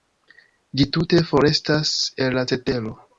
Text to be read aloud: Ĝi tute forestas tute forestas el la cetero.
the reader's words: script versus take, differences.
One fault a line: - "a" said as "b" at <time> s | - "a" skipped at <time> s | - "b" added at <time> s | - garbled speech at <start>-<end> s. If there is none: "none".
- "tute forestas" skipped at 1.9 s